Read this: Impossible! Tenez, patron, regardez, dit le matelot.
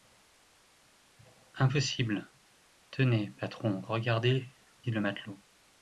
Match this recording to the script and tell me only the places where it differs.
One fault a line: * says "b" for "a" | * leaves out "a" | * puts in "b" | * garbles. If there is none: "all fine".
all fine